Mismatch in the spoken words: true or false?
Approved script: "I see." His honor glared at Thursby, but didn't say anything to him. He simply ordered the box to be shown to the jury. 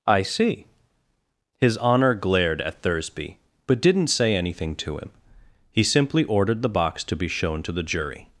false